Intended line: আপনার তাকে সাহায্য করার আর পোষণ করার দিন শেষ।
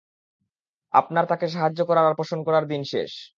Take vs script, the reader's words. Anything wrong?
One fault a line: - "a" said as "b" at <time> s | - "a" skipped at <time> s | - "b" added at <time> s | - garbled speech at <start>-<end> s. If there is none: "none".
none